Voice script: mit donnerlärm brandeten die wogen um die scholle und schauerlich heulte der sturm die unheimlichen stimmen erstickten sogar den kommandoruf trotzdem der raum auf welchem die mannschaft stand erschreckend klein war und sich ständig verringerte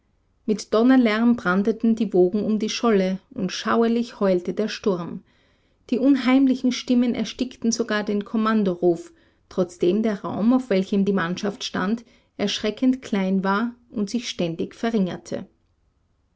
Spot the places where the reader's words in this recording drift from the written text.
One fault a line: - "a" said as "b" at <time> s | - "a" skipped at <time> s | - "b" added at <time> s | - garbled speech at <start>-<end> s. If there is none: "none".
none